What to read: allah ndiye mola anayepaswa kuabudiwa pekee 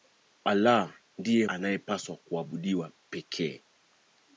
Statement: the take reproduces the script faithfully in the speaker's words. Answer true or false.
false